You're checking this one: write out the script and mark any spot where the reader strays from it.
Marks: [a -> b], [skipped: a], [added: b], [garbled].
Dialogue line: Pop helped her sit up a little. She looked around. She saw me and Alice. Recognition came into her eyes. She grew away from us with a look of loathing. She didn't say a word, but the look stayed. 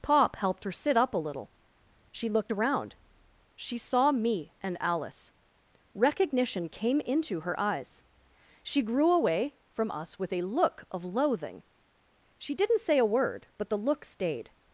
Pop helped her sit up a little. She looked around. She saw me and Alice. Recognition came into her eyes. She grew away from us with a look of loathing. She didn't say a word, but the look stayed.